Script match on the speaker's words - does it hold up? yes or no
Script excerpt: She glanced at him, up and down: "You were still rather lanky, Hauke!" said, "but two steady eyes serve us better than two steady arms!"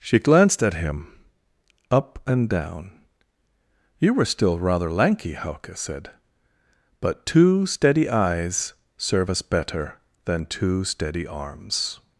yes